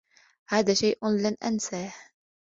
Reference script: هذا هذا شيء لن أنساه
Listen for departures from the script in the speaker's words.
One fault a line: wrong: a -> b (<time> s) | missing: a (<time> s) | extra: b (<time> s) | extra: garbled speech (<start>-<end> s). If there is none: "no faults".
missing: هذا (0.7 s)